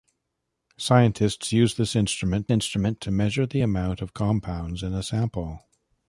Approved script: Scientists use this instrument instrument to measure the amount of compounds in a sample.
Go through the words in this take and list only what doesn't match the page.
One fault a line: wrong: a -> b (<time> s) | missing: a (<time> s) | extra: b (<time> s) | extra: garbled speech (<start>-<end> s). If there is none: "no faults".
no faults